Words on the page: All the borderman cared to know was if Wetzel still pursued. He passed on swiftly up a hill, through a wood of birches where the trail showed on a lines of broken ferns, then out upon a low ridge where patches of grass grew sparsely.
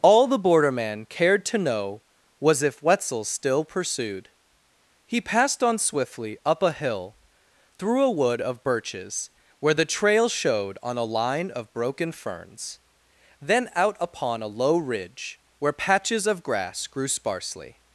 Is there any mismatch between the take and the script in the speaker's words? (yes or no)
yes